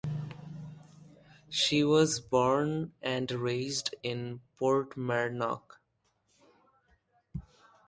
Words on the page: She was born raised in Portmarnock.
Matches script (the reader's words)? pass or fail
fail